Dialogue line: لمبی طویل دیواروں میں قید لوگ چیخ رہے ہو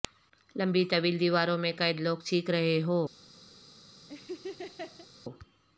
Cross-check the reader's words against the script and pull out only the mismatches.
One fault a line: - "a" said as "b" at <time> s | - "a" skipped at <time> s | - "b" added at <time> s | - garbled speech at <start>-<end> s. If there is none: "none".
none